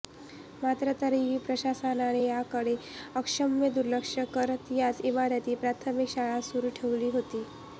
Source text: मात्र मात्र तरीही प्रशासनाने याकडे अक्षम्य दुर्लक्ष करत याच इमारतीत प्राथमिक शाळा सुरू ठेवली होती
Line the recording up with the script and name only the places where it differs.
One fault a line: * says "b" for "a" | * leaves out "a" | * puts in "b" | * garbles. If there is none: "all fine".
* leaves out "मात्र"